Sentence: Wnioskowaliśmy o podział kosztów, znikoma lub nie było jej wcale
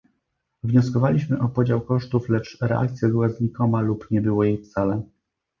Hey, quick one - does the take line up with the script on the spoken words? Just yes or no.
no